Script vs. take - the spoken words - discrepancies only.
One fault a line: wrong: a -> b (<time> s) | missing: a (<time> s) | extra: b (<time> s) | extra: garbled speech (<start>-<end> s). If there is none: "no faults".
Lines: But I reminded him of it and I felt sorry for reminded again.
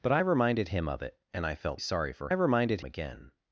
no faults